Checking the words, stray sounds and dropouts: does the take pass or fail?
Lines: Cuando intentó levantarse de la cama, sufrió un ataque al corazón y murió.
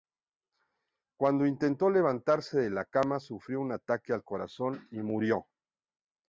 pass